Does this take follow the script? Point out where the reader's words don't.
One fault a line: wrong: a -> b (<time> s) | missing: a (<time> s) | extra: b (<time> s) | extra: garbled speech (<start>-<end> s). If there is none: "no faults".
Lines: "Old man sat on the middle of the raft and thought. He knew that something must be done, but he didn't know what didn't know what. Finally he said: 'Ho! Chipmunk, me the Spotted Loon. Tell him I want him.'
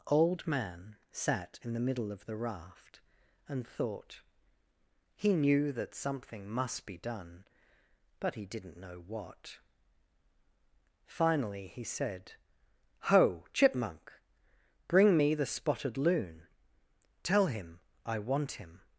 wrong: on -> in (1.6 s)
missing: didn't know what (9.6 s)
extra: bring (14.9 s)